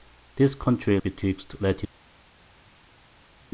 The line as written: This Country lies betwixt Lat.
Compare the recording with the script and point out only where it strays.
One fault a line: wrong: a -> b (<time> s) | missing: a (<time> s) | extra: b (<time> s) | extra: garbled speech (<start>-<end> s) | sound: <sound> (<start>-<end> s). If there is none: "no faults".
missing: lies (1.0 s)